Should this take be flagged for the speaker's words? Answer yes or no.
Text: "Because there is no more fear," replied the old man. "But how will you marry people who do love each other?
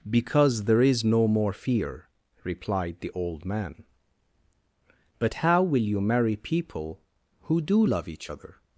no